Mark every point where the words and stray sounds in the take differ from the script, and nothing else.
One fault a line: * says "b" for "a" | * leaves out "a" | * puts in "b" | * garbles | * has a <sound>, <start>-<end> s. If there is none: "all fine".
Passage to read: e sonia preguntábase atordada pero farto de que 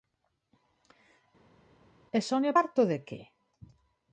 * leaves out "preguntábase atordada pero"